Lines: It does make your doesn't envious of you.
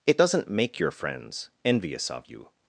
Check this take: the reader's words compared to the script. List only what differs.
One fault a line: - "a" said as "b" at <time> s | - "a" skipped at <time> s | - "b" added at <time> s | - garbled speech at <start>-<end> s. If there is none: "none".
- "does" said as "doesn't" at 0.2 s
- "doesn't" said as "friends" at 0.9 s